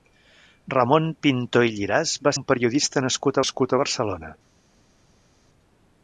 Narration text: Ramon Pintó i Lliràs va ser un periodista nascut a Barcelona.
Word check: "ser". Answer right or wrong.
wrong